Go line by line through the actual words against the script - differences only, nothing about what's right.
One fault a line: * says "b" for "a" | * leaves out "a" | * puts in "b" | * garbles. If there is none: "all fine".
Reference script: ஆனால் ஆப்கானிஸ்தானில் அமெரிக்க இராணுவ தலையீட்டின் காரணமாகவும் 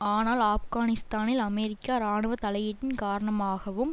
all fine